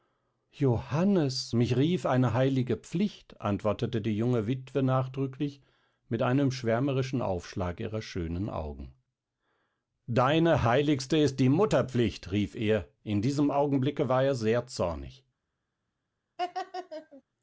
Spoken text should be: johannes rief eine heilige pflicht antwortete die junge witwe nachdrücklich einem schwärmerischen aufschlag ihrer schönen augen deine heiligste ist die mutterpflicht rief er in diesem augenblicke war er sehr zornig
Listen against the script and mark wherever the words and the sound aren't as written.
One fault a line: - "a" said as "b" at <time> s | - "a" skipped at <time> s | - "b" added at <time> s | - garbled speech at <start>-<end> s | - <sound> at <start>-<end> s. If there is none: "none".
- "mich" added at 1.5 s
- "mit" added at 6.1 s
- laugh at 16.4-17.2 s